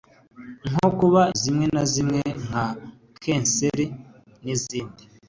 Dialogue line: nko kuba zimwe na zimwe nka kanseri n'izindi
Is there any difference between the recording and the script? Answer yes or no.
no